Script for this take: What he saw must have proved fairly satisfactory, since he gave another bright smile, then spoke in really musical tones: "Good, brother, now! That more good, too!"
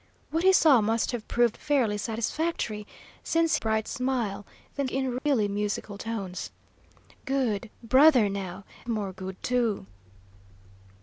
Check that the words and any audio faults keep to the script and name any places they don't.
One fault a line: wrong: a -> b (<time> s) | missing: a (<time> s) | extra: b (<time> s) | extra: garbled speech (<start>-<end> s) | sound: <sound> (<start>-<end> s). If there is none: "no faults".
missing: he gave another (3.6 s)
missing: spoke (4.9 s)
sound: dropout (5.2-5.3 s)
missing: That (8.6 s)